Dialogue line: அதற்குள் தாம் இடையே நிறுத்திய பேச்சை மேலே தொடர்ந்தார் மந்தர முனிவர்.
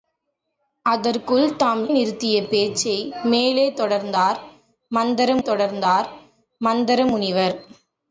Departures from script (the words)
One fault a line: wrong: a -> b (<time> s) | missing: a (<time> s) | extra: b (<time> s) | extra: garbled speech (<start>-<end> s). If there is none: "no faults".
missing: இடையே (1.9 s)
extra: தொடர்ந்தார் மந்தர (5.4 s)